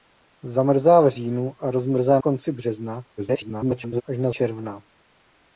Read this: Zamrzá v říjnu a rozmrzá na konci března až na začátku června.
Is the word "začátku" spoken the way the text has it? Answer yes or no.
no